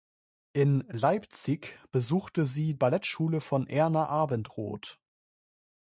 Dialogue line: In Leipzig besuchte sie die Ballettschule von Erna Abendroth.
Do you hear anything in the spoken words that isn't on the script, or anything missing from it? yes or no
yes